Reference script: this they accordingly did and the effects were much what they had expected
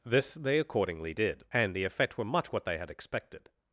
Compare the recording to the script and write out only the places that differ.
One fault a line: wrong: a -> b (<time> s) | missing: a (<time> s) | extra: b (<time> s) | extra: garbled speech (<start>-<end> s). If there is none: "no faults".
wrong: effects -> effect (1.8 s)